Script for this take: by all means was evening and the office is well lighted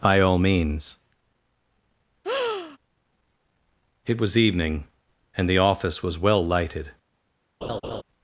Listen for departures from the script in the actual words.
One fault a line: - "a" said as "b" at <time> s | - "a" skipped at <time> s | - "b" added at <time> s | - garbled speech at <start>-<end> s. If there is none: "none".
- "it" added at 4.0 s
- "is" said as "was" at 6.0 s